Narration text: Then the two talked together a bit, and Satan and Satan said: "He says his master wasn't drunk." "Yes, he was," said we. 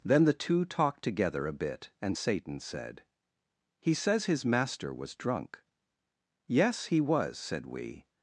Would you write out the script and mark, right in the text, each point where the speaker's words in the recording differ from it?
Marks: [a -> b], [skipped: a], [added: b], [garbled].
Then the two talked together a bit, and Satan [skipped: and Satan] said: "He says his master [wasn't -> was] drunk." "Yes, he was," said we.